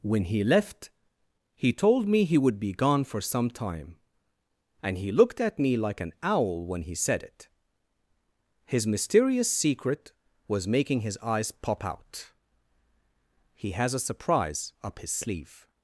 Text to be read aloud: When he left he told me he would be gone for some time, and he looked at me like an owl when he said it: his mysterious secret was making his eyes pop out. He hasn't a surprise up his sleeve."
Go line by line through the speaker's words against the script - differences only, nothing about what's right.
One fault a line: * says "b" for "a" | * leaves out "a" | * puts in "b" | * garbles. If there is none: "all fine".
* says "has" for "hasn't"